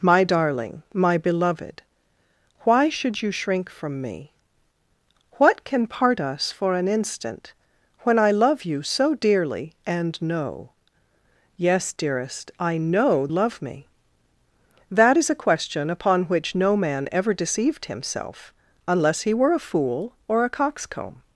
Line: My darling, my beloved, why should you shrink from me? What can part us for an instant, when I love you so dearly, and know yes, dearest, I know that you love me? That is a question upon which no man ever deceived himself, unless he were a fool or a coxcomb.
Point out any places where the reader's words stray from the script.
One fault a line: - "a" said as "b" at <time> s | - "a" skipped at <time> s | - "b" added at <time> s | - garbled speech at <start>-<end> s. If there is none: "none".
- "that you" skipped at 13.3 s